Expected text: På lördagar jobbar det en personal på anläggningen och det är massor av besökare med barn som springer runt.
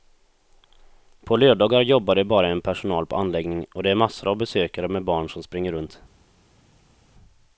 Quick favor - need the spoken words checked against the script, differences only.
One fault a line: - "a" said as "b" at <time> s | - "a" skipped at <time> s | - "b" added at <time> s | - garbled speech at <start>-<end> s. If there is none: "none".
- "bara" added at 2.2 s